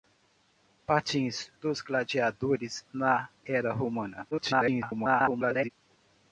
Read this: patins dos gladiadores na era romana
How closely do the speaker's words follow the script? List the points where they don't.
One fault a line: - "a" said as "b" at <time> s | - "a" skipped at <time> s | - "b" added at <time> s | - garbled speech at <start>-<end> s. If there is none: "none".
- garbled speech at 4.3-5.7 s